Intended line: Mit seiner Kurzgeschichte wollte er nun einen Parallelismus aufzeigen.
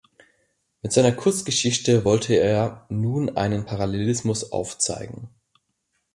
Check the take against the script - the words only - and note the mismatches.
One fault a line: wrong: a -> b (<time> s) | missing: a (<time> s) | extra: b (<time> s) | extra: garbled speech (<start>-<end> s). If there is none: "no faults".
no faults